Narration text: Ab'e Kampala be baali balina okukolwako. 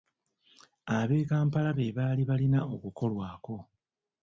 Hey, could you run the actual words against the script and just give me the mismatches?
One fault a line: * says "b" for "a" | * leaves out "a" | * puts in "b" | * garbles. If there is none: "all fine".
all fine